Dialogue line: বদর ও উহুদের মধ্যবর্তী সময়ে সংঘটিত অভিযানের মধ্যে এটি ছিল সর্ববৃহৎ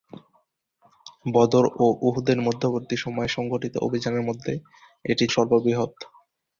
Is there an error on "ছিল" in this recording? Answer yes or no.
yes